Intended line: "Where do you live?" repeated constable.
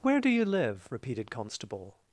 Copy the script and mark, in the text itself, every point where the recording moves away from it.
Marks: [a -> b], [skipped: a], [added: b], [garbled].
"Where do you live?" repeated constable.